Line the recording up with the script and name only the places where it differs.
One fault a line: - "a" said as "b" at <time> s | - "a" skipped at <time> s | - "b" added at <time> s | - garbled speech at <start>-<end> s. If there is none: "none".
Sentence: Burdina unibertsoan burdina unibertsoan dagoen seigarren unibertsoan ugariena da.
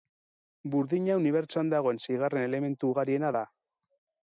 - "burdina unibertsoan" skipped at 1.7 s
- "unibertsoan" said as "elementu" at 2.5 s